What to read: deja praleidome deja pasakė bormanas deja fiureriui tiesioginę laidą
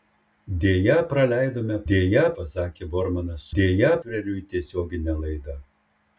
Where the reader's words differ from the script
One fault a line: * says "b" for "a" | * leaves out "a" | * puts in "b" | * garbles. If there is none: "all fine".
all fine